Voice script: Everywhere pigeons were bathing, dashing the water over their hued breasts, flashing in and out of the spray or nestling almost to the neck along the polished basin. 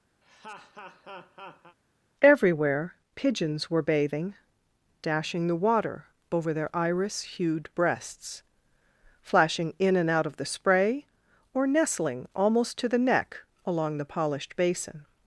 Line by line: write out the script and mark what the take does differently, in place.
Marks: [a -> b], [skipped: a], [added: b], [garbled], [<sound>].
[laugh] Everywhere pigeons were bathing, dashing the water over their [added: iris] hued breasts, flashing in and out of the spray or nestling almost to the neck along the polished basin.